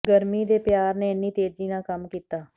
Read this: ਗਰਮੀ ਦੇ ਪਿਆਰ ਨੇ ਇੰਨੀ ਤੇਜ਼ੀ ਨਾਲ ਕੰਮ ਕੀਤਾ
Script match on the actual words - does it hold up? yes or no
yes